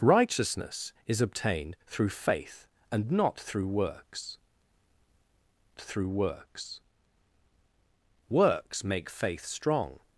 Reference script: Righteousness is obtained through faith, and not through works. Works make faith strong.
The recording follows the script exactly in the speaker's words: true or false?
false